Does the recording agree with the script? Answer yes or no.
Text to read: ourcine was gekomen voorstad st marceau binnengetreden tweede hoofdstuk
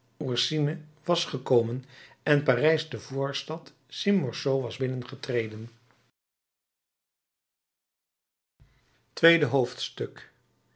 no